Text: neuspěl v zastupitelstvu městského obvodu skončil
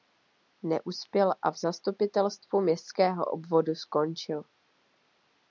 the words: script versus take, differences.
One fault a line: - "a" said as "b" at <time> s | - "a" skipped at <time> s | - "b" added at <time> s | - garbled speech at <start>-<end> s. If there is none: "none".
- "a" added at 1.4 s